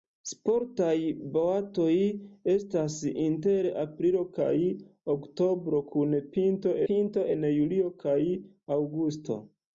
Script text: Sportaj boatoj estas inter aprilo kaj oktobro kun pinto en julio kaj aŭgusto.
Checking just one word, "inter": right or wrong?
right